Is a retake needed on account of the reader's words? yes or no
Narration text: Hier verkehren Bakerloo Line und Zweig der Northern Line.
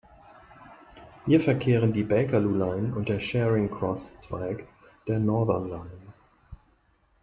yes